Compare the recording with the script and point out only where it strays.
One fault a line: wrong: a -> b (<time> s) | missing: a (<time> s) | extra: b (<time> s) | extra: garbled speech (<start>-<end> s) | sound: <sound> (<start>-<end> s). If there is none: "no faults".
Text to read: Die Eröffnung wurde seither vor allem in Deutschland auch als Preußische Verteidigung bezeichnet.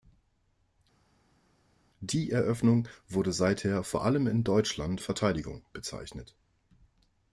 missing: auch als Preußische (5.0 s)